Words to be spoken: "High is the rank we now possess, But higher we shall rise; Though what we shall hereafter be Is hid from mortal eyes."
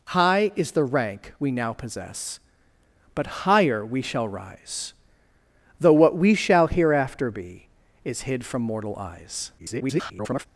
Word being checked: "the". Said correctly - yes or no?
yes